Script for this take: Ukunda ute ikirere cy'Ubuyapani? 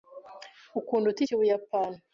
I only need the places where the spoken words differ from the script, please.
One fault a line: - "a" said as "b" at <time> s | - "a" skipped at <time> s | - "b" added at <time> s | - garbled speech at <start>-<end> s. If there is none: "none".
- "ikirere" skipped at 1.2 s